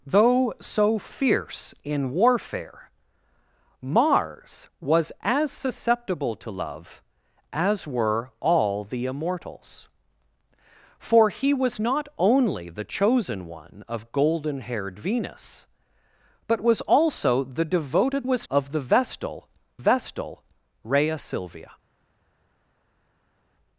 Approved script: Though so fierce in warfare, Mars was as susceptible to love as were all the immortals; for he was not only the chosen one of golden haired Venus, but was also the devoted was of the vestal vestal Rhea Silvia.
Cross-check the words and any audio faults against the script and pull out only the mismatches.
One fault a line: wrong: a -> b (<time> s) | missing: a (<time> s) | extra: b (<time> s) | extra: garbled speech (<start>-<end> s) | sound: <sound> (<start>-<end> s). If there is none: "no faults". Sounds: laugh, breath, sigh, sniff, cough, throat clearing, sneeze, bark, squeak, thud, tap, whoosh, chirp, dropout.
no faults